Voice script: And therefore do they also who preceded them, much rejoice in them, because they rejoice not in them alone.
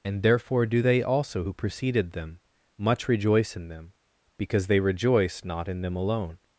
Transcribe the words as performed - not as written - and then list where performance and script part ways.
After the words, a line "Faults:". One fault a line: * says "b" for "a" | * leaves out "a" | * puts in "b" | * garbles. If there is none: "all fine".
And therefore do they also who preceded them, much rejoice in them, because they rejoice not in them alone.
Faults:
all fine